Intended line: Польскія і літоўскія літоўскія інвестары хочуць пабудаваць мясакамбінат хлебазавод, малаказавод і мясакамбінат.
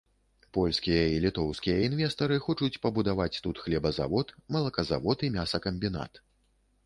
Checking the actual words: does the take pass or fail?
fail